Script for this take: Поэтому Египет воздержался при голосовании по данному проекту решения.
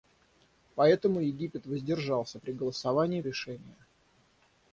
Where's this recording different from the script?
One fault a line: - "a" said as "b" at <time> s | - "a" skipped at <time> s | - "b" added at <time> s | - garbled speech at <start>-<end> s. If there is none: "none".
- "по данному проекту" skipped at 3.2 s